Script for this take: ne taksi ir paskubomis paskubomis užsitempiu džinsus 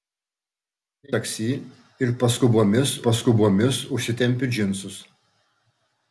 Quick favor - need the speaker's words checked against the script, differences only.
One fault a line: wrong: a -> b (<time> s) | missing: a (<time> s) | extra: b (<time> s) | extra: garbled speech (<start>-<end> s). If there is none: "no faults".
no faults